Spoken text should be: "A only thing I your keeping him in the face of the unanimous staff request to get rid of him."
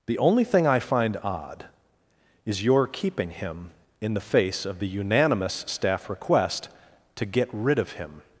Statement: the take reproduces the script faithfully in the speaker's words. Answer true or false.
false